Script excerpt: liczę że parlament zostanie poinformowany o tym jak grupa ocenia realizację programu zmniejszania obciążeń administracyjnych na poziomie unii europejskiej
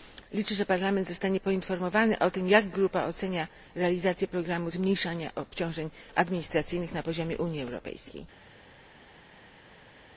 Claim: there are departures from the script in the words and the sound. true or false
false